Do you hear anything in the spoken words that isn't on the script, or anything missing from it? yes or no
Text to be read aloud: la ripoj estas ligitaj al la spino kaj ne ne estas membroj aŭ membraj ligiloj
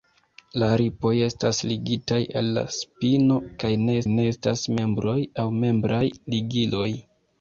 no